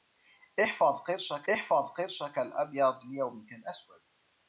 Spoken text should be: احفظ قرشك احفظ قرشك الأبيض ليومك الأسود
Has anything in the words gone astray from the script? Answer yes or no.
no